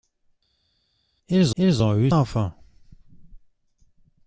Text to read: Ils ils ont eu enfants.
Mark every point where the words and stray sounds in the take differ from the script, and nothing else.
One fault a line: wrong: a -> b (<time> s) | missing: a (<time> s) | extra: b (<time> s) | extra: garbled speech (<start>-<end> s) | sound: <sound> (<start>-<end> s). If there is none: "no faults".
no faults